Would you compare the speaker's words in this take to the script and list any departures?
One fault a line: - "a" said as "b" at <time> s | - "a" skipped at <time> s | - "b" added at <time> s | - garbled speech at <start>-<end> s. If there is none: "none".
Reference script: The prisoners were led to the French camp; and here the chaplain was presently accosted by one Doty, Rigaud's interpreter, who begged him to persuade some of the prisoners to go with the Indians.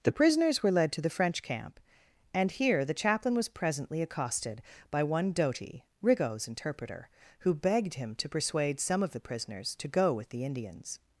none